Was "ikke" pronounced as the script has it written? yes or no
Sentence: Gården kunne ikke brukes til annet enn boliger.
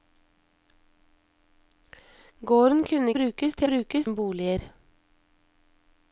no